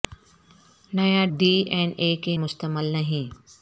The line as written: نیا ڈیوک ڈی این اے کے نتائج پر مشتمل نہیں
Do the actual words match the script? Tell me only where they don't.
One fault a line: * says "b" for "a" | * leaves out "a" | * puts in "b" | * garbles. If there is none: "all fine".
* leaves out "ڈیوک"
* leaves out "نتائج پر"